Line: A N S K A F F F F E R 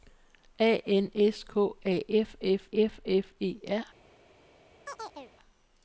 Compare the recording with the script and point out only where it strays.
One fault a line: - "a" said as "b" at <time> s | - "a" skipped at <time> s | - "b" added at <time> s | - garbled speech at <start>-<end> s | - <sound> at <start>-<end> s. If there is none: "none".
- chirp at 4.8-5.3 s